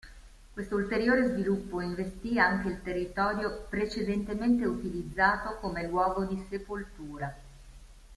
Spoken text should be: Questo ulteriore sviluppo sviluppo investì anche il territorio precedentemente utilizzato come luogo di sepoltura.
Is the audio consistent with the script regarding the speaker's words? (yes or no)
no